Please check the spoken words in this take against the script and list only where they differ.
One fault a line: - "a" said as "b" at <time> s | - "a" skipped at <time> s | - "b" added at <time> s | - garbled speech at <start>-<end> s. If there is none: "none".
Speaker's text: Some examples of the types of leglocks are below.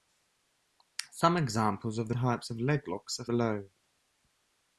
none